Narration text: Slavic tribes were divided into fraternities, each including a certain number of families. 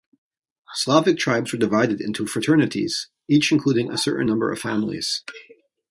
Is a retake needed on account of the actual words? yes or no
no